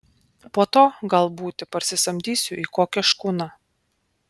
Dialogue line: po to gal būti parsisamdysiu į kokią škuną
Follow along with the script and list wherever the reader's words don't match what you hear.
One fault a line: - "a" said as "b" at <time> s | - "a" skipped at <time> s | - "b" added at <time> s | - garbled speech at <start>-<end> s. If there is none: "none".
none